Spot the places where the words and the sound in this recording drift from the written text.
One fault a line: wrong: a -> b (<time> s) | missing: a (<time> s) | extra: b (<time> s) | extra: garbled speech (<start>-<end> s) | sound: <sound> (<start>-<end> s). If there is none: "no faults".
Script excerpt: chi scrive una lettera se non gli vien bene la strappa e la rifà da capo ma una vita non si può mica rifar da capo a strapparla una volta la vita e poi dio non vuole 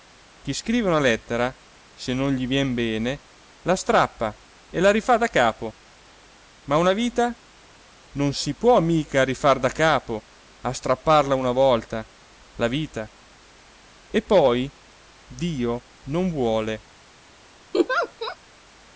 sound: laugh (17.7-18.4 s)